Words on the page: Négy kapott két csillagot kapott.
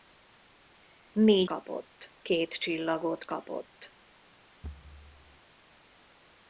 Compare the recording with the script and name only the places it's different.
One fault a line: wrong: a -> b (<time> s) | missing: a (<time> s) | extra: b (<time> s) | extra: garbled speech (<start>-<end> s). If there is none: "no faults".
no faults